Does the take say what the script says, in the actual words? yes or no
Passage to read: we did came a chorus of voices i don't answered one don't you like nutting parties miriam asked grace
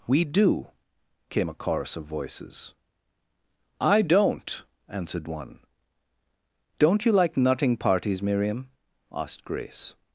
no